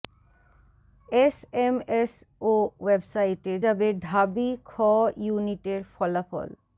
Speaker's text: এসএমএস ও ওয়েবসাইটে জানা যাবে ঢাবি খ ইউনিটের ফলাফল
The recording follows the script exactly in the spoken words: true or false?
false